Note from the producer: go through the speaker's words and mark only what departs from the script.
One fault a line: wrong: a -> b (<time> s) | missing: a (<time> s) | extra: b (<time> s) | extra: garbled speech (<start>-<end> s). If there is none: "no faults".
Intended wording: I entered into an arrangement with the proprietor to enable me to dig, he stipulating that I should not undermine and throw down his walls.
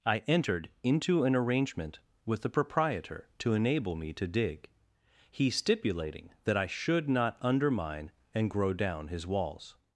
wrong: throw -> grow (8.5 s)